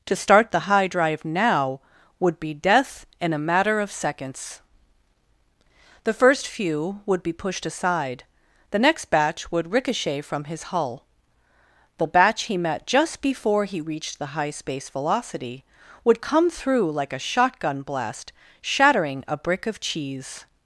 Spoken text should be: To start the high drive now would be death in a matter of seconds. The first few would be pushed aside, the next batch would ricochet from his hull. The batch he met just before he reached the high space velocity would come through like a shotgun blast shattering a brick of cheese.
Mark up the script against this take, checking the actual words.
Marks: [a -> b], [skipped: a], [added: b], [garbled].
To start the high drive now would be death in a matter of seconds. The first few would be pushed aside, the next batch would ricochet from his hull. The batch he met just before he reached the high space velocity would come through like a shotgun blast shattering a brick of cheese.